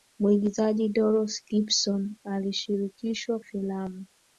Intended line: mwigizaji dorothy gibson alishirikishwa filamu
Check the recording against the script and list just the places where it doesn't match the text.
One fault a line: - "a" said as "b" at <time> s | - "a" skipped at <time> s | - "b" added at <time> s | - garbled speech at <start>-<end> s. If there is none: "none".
none